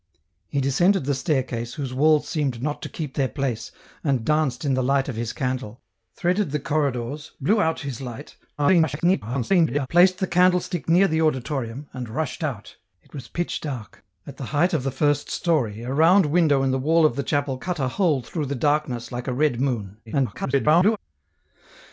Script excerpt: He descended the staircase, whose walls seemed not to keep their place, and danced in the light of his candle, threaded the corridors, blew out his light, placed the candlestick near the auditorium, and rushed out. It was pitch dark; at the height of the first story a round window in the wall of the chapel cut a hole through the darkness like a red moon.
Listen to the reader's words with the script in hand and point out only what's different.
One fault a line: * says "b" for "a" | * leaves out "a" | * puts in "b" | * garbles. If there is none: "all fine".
* garbles
* garbles